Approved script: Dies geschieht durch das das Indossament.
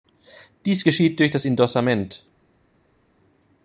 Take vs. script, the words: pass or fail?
fail